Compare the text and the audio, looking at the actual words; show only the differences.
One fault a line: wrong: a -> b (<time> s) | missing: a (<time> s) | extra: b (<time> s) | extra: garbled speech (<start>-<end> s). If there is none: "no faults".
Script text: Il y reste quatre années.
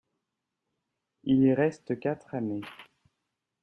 no faults